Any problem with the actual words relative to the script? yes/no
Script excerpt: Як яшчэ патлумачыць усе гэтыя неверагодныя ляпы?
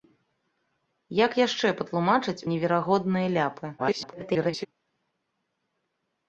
yes